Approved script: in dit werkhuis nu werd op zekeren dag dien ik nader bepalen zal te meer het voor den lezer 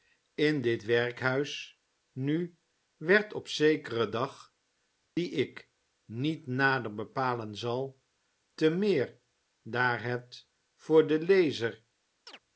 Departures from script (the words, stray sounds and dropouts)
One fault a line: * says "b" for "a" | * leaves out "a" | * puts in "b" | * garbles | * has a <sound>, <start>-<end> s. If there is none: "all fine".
* has a dropout, 5.1-5.2 s
* puts in "niet"
* puts in "daar"
* has a chirp, 12.3-12.4 s